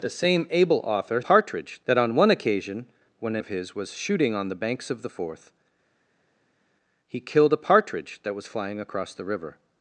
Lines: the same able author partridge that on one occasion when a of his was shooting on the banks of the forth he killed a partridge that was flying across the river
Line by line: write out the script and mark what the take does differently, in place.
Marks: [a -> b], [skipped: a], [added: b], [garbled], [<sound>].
the same able author partridge that on one occasion when a of his was shooting on the banks of the forth he killed a partridge that was flying across the river